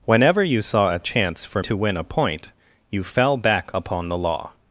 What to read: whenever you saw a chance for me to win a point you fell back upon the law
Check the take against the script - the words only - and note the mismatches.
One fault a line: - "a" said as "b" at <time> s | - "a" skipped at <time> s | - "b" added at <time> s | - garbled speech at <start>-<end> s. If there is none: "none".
- "me" skipped at 1.6 s